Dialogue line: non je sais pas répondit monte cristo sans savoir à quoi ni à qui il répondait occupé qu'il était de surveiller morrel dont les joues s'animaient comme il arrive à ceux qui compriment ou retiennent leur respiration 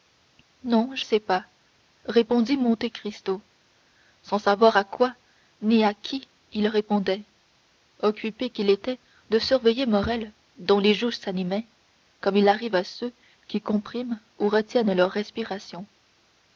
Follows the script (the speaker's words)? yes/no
yes